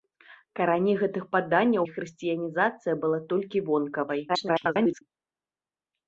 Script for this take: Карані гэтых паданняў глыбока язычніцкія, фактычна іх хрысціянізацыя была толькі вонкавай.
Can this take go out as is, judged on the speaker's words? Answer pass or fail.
fail